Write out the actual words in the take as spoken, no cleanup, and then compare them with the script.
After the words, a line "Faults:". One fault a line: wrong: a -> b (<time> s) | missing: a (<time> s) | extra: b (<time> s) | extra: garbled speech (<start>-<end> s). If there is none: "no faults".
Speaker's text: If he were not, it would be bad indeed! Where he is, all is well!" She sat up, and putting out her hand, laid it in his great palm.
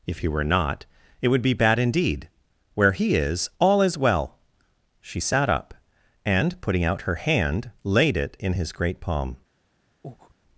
If he were not, it would be bad indeed! Where he is, all is well!" She sat up, and putting out her hand, laid it in his great palm.
Faults:
no faults